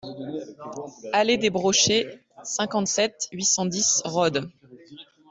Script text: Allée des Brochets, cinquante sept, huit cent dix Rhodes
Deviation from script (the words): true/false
false